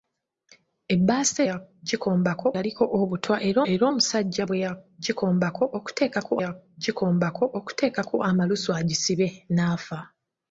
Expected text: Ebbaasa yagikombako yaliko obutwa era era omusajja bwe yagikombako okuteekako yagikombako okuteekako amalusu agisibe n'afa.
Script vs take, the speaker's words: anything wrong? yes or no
no